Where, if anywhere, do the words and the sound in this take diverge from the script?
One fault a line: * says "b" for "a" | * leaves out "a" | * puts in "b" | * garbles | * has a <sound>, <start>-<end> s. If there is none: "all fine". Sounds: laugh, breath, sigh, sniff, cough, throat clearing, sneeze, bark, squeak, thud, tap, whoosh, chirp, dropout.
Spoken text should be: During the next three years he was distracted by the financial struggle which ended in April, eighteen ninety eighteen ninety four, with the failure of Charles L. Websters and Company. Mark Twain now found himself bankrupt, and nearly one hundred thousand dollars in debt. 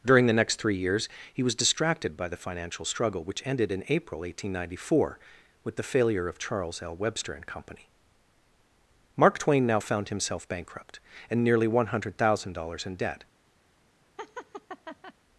* leaves out "eighteen ninety"
* says "Webster" for "Websters"
* has a laugh, 14.2-15.1 s